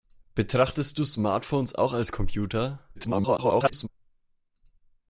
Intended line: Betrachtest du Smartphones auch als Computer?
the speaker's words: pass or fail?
fail